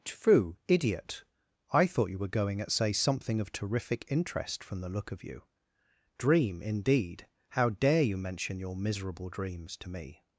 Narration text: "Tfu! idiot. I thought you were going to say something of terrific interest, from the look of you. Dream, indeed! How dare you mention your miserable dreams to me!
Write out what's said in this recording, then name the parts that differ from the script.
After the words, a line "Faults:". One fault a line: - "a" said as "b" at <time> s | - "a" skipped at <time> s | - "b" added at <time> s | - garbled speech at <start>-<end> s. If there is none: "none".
"Tfu! idiot. I thought you were going at say something of terrific interest, from the look of you. Dream, indeed! How dare you mention your miserable dreams to me!
Faults:
- "to" said as "at" at 2.6 s